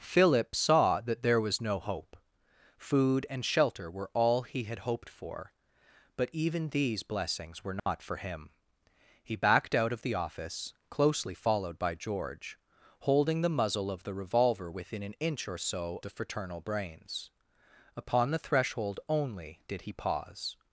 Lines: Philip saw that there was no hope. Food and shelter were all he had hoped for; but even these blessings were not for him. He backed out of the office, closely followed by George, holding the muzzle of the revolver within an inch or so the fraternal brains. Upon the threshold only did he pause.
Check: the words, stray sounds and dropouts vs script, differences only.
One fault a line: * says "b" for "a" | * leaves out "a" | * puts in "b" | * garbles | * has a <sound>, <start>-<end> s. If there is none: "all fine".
* has a dropout, 7.8-7.9 s